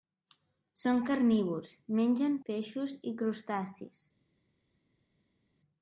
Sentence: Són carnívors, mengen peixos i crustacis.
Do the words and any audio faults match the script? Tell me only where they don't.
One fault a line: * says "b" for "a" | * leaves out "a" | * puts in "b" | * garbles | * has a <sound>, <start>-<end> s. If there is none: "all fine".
all fine